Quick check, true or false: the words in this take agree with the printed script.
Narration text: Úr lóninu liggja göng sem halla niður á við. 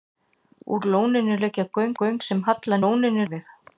false